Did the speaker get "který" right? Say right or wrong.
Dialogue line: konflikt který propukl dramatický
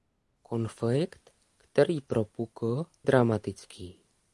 right